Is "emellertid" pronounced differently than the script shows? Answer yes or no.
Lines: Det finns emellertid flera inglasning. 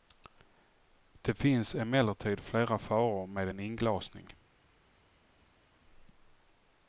no